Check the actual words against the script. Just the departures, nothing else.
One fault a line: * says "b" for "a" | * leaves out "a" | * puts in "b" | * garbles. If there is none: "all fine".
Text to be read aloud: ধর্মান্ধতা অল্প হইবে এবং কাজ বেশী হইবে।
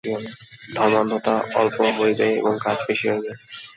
all fine